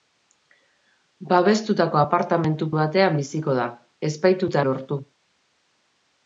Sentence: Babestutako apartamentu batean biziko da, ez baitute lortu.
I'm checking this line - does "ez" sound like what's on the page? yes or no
yes